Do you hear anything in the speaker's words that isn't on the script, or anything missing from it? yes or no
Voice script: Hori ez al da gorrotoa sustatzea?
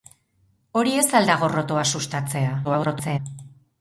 yes